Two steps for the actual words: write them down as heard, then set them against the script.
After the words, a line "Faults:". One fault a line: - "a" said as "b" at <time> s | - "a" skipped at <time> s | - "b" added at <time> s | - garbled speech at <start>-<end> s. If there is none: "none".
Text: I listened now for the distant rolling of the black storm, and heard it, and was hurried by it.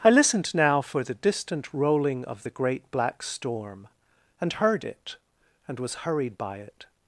I listened now for the distant rolling of the great black storm, and heard it, and was hurried by it.
Faults:
- "great" added at 2.5 s